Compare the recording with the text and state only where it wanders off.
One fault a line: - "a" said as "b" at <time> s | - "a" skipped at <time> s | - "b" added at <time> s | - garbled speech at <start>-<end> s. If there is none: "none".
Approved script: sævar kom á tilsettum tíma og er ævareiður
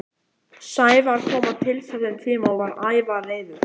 - "er" said as "var" at 2.6 s